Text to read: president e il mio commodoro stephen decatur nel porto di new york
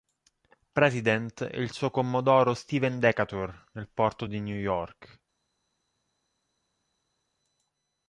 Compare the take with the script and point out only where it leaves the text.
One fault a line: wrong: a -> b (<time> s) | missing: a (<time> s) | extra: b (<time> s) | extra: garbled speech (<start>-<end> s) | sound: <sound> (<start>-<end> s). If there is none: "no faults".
wrong: mio -> suo (1.7 s)